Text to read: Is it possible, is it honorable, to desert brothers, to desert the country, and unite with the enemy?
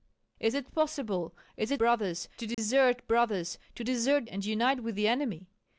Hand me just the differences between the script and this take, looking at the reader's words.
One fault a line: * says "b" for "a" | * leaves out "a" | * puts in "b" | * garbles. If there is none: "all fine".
* says "brothers" for "honorable"
* leaves out "the country"